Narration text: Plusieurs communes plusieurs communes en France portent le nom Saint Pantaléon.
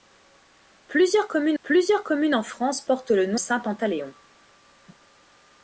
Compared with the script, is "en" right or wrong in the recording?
right